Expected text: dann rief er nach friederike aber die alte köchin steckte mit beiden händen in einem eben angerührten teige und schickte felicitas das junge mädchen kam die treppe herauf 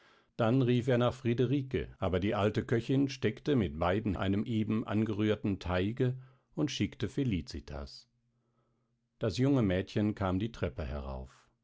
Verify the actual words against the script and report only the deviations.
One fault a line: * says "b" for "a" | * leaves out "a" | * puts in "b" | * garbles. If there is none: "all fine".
* leaves out "händen in"